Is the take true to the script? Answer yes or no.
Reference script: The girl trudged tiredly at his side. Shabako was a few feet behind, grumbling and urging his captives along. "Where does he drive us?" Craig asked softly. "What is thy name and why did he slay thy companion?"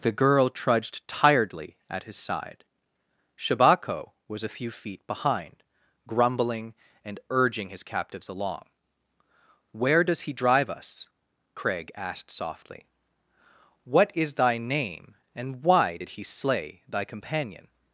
yes